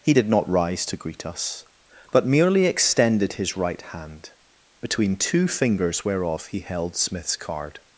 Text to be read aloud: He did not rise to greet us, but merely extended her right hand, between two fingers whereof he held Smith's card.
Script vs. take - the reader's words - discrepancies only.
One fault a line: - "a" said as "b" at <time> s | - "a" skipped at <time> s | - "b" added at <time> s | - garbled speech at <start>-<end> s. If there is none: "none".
- "her" said as "his" at 3.3 s